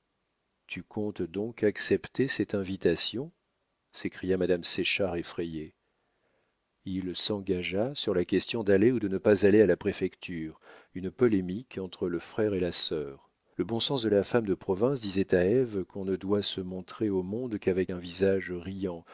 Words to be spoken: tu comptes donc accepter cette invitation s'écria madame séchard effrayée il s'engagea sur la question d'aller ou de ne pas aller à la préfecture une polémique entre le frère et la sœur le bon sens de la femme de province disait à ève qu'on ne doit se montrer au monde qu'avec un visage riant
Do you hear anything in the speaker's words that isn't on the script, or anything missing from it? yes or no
no